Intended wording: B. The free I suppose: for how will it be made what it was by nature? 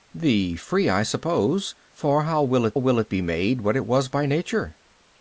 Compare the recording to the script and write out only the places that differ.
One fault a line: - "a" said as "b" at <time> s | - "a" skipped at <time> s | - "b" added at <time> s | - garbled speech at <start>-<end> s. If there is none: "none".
- "will it" added at 2.7 s